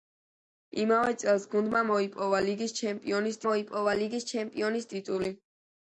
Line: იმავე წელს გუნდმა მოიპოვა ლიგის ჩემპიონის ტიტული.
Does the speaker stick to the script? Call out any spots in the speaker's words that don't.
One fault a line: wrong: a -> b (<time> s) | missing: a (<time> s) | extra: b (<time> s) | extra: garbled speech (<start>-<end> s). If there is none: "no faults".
extra: მოიპოვა ლიგის ჩემპიონის (3.5 s)